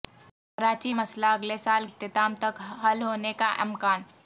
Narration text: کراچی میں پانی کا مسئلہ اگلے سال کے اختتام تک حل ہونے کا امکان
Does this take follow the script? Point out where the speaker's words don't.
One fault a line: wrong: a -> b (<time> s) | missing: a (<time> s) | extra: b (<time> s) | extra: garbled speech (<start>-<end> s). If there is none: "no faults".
missing: میں پانی کا (0.9 s)
missing: کے (1.9 s)